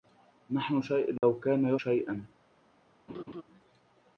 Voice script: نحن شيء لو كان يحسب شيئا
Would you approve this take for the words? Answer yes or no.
no